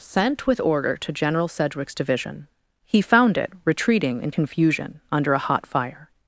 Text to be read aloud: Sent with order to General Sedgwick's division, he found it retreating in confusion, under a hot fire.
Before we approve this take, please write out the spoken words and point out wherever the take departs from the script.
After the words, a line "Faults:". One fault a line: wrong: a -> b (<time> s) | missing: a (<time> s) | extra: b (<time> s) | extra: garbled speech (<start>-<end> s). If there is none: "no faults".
Sent with order to General Sedgwick's division, he found it retreating in confusion, under a hot fire.
Faults:
no faults